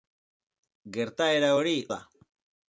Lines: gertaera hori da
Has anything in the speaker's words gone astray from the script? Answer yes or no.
no